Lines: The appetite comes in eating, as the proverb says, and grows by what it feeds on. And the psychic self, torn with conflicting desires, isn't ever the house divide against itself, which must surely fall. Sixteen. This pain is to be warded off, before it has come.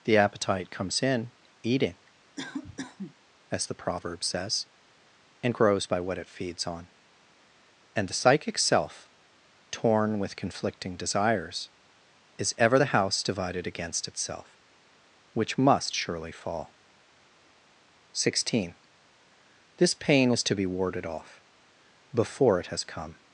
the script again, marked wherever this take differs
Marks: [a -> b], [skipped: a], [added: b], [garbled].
The appetite comes in eating, as the proverb says, and grows by what it feeds on. And the psychic self, torn with conflicting desires, [isn't -> is] ever the house [divide -> divided] against itself, which must surely fall. Sixteen. This pain is to be warded off, before it has come.